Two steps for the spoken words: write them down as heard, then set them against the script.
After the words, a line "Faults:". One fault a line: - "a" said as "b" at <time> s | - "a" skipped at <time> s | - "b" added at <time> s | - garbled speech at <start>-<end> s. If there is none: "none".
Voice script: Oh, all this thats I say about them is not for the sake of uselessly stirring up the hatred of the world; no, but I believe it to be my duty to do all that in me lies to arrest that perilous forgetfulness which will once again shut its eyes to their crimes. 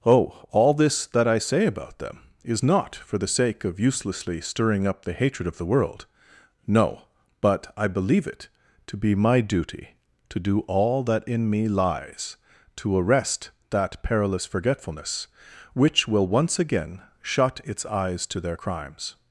Oh, all this that I say about them is not for the sake of uselessly stirring up the hatred of the world; no, but I believe it to be my duty to do all that in me lies to arrest that perilous forgetfulness which will once again shut its eyes to their crimes.
Faults:
- "thats" said as "that" at 1.1 s